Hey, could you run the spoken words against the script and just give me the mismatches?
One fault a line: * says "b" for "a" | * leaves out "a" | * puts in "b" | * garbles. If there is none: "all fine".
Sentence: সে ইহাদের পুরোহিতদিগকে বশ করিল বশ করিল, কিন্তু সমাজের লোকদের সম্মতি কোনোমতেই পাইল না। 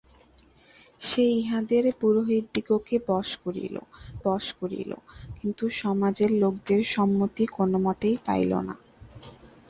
all fine